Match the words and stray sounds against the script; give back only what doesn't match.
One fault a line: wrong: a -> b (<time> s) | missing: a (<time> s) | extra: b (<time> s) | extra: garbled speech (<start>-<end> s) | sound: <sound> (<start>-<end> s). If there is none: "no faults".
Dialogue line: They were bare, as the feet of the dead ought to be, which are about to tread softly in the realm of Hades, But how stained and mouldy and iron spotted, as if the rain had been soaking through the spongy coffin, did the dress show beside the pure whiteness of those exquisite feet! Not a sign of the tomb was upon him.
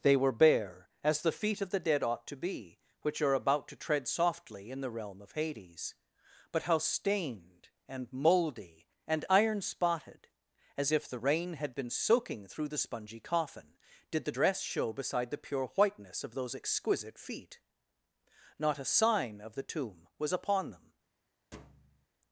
wrong: him -> them (20.7 s)
sound: thud (21.5-22.1 s)